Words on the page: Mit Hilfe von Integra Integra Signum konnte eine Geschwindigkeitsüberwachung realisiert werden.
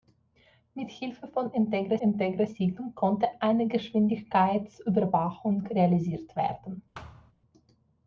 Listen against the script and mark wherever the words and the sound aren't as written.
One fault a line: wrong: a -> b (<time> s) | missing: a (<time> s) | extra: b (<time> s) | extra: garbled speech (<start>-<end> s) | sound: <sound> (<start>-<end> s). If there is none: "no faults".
sound: thud (6.9-7.3 s)